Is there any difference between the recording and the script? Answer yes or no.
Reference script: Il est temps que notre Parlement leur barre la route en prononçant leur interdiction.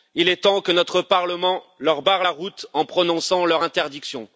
no